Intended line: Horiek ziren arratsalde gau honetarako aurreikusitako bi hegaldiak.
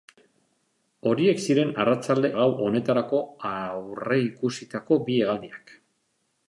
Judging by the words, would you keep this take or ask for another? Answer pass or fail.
pass